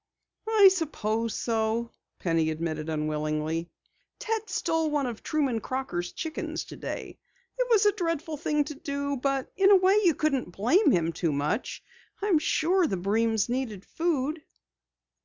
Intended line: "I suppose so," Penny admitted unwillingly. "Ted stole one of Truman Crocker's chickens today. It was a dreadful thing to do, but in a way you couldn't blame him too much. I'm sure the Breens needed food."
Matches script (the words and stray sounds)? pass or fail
pass